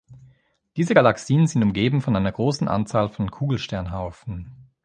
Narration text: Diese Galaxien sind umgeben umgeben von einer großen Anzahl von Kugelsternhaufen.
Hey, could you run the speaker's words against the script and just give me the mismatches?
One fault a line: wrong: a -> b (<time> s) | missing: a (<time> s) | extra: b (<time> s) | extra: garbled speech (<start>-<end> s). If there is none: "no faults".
missing: umgeben (2.0 s)